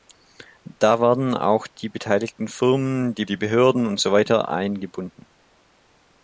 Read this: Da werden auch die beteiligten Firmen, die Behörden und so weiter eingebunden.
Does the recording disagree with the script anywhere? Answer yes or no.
yes